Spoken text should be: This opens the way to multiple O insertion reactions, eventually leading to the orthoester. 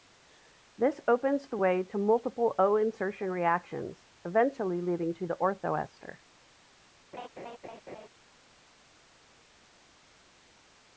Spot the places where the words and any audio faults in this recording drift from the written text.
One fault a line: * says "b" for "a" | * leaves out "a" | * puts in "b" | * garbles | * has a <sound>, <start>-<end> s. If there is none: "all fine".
* has a laugh, 7.1-8.1 s